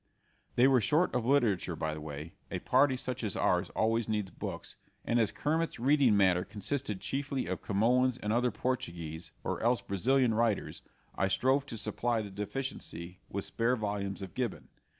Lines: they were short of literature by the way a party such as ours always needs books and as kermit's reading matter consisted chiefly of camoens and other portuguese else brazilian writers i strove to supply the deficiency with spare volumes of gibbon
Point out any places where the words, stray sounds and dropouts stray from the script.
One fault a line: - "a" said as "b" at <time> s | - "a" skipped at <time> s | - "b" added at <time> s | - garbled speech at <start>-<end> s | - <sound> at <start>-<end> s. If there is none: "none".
- "or" added at 9.4 s